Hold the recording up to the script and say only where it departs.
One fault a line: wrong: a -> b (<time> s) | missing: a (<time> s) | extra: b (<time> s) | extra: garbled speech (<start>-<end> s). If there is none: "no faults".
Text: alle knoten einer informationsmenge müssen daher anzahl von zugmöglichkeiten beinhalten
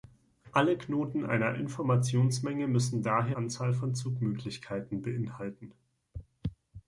no faults